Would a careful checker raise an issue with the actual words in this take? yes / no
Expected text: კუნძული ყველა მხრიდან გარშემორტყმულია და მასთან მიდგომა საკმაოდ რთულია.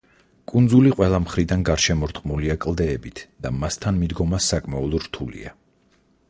yes